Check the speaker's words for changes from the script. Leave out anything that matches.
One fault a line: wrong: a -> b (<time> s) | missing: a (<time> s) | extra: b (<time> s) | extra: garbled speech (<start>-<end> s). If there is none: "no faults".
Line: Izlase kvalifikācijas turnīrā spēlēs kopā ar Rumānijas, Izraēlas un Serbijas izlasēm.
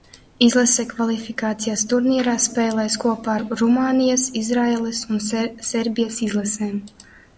no faults